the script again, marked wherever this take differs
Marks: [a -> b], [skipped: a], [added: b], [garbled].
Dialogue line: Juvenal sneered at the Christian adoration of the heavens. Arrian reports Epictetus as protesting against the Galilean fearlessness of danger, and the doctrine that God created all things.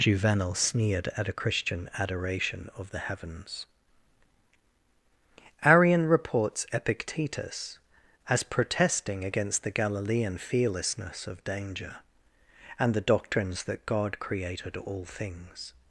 Juvenal sneered at [the -> a] Christian adoration of the heavens. Arrian reports Epictetus as protesting against the Galilean fearlessness of danger, and the [doctrine -> doctrines] that God created all things.